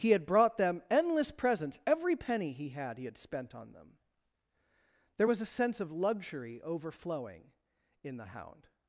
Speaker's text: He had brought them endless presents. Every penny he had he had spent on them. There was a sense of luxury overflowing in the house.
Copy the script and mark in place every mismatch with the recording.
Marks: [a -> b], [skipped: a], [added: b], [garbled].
He had brought them endless presents. Every penny he had he had spent on them. There was a sense of luxury overflowing in the [house. -> hound]